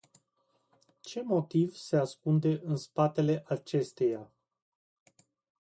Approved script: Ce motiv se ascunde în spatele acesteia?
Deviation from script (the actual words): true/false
false